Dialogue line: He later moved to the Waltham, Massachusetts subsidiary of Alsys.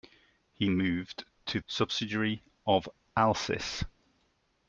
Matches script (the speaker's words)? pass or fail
fail